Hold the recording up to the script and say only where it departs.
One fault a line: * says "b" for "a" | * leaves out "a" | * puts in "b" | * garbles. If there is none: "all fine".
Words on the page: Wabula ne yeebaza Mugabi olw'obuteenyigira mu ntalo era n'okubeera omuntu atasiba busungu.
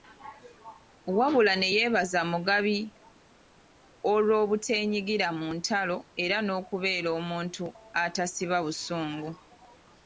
all fine